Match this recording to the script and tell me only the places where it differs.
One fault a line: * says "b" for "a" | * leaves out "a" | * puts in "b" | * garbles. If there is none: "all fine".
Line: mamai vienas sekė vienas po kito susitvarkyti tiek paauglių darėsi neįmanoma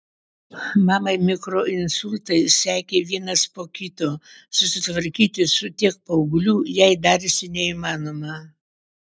* says "mikroinsultai" for "vienas"
* puts in "su"
* puts in "jai"